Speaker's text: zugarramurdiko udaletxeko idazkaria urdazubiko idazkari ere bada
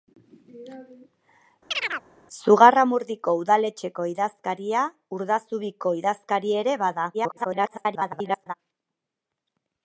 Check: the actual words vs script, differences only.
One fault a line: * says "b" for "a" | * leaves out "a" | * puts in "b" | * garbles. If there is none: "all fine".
* garbles